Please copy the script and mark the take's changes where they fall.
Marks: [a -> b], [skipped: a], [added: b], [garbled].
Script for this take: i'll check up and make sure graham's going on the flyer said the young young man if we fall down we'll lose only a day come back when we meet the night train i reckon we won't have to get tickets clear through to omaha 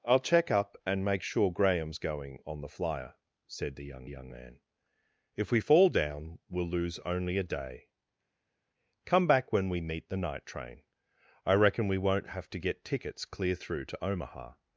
i'll check up and make sure graham's going on the flyer said the young young man if we fall down we'll lose only a day come back when we meet the night train i reckon we won't have to get tickets clear through to omaha